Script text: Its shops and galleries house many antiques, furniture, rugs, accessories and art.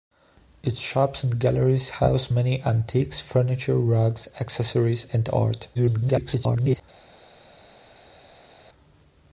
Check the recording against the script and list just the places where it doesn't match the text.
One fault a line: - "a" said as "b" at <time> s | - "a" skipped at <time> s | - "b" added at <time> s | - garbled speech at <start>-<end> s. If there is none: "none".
- garbled speech at 5.7-6.8 s